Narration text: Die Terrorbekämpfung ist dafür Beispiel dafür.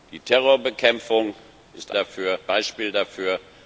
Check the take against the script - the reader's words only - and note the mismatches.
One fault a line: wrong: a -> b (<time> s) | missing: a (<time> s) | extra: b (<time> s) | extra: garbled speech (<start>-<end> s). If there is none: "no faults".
no faults